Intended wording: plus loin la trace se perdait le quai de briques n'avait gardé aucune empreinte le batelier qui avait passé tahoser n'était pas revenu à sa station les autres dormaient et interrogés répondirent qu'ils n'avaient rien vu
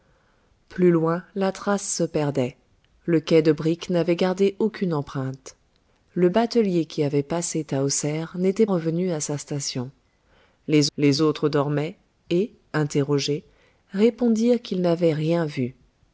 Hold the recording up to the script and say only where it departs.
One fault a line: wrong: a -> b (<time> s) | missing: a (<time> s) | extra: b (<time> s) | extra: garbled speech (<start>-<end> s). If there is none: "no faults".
missing: pas (8.7 s)
extra: les (11.0 s)